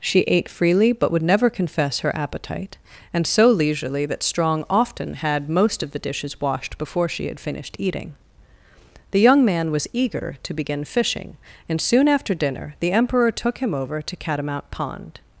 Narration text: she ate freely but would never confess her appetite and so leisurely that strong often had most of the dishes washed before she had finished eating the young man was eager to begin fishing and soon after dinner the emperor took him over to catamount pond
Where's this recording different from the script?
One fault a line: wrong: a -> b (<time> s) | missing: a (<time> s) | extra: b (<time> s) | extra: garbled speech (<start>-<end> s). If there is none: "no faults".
no faults